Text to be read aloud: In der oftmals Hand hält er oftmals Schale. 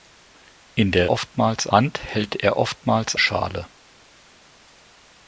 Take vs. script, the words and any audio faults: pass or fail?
pass